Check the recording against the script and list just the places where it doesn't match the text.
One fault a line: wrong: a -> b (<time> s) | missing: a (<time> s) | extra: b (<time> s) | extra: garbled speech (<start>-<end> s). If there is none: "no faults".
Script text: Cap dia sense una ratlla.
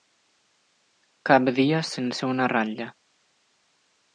no faults